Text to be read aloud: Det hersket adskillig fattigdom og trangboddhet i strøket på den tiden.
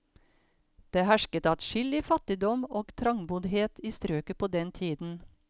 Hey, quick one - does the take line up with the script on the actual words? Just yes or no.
yes